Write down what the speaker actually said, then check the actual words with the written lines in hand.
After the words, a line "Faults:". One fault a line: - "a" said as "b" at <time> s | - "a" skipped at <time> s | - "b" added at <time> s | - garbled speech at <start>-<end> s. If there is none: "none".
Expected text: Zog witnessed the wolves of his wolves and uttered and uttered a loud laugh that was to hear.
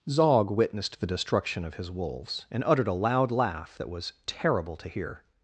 Zog witnessed the destruction of his wolves and uttered a loud laugh that was terrible to hear.
Faults:
- "wolves" said as "destruction" at 1.1 s
- "and uttered" skipped at 2.9 s
- "terrible" added at 4.3 s